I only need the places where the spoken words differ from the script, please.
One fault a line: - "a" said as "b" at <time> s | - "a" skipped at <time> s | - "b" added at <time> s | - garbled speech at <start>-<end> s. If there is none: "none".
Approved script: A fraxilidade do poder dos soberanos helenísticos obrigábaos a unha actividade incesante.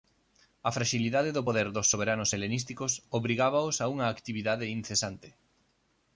none